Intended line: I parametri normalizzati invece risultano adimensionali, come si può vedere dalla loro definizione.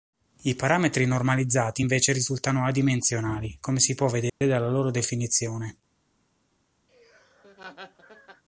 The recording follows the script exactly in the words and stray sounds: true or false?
false